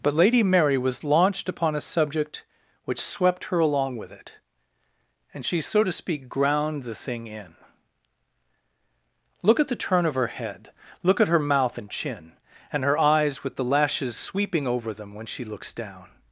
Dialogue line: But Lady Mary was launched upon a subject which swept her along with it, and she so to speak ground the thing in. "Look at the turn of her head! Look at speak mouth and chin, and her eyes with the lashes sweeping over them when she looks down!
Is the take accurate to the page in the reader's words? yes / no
no